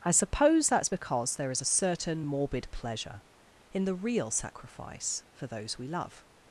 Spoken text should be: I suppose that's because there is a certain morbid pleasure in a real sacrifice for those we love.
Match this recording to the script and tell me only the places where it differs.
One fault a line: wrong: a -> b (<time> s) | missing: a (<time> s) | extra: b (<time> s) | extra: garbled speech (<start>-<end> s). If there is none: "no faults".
wrong: a -> the (3.8 s)